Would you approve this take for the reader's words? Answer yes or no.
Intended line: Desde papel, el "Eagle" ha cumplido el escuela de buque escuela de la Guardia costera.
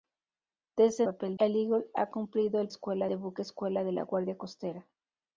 yes